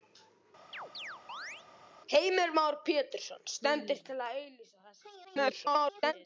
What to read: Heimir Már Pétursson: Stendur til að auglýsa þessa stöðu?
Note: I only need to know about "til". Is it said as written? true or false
true